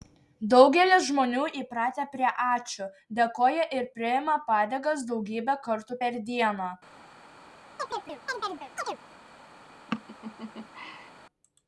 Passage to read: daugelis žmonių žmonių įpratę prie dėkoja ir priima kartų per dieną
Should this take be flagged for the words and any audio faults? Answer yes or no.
yes